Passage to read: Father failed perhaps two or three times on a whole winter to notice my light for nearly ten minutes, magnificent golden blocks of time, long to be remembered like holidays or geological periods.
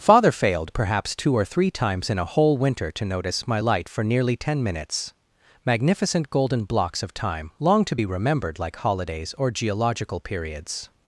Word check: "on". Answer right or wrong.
wrong